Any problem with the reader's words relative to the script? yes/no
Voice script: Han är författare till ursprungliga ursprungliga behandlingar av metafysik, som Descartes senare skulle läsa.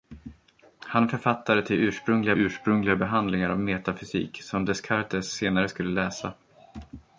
no